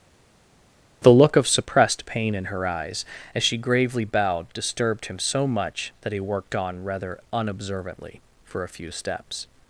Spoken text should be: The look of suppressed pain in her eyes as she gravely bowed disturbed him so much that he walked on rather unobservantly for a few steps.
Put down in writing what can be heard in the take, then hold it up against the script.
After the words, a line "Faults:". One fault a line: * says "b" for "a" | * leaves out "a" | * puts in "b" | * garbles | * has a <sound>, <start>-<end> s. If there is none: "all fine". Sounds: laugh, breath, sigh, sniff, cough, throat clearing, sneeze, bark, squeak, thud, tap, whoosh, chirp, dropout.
The look of suppressed pain in her eyes as she gravely bowed disturbed him so much that he worked on rather unobservantly for a few steps.
Faults:
* says "worked" for "walked"